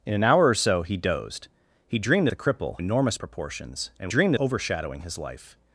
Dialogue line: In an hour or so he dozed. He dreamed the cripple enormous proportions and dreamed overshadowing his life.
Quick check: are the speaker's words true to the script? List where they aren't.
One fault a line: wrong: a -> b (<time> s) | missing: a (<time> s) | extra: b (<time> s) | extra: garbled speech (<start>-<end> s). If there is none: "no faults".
no faults